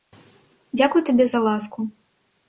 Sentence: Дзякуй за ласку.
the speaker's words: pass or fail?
fail